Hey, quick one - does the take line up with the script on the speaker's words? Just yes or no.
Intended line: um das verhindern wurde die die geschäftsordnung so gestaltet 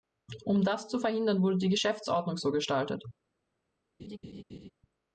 no